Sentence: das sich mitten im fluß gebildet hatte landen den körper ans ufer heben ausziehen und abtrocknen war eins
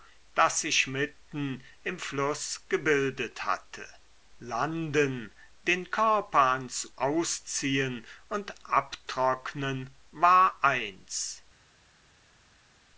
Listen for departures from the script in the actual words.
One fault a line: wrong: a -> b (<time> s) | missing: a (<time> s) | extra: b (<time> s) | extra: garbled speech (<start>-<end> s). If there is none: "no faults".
missing: ufer heben (6.9 s)